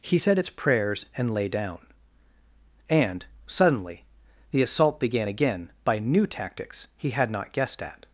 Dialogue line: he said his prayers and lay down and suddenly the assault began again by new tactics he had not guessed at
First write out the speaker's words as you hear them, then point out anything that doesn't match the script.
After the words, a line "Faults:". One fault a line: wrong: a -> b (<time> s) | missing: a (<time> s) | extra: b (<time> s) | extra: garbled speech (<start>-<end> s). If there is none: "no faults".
he said its prayers and lay down and suddenly the assault began again by new tactics he had not guessed at
Faults:
wrong: his -> its (0.4 s)